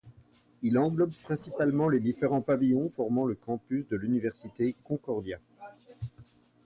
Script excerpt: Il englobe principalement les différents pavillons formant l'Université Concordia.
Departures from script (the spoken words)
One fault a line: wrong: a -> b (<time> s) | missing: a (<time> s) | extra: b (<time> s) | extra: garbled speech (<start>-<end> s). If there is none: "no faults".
extra: le campus de (3.3 s)